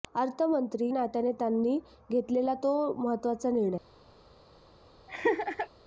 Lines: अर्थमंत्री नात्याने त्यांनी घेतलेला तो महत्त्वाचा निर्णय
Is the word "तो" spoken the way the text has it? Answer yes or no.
yes